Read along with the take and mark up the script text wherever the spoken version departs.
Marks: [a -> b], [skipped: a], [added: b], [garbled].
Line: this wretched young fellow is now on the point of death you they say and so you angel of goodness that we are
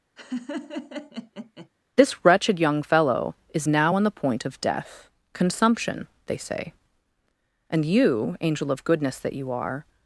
this wretched young fellow is now on the point of death [you -> consumption] they say and [skipped: so] you angel of goodness that [we -> you] are